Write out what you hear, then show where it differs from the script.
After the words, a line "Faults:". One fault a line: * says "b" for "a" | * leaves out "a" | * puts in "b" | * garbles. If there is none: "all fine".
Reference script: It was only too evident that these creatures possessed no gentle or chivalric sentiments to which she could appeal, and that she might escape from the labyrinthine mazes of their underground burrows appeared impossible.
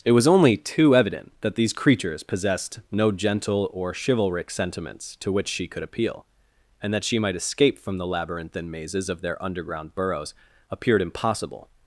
It was only too evident that these creatures possessed no gentle or chivalric sentiments to which she could appeal, and that she might escape from the labyrinthine mazes of their underground burrows appeared impossible.
Faults:
all fine